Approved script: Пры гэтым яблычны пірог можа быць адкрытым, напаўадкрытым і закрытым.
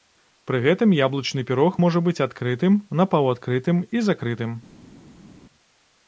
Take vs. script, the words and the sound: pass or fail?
pass